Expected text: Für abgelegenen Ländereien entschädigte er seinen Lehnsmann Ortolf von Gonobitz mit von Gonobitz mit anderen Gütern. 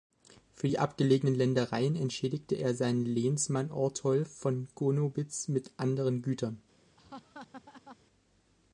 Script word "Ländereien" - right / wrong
right